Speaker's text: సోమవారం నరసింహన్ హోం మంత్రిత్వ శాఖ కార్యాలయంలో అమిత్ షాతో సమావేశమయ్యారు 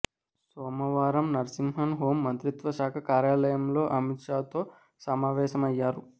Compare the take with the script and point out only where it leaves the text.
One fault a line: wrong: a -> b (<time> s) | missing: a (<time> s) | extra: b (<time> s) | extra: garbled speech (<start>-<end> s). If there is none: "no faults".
no faults